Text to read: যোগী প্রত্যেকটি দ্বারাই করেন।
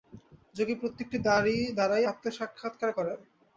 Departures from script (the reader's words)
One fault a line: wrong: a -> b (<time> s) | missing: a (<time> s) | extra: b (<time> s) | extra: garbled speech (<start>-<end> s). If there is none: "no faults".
extra: আত্মসাক্ষাৎকার (2.1 s)